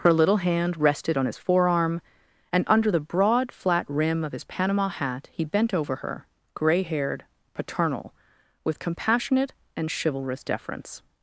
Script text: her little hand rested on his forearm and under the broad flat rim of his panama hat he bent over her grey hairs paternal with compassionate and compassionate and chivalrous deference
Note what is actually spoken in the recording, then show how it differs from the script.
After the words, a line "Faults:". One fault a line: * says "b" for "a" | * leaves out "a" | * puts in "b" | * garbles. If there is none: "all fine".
her little hand rested on his forearm and under the broad flat rim of his panama hat he bent over her grey haired paternal with compassionate and chivalrous deference
Faults:
* says "haired" for "hairs"
* leaves out "compassionate and"